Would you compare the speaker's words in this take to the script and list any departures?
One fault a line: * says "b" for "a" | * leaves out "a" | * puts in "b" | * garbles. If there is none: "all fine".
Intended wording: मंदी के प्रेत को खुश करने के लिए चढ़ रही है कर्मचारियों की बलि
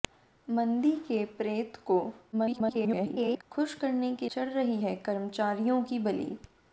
* garbles
* leaves out "लिए"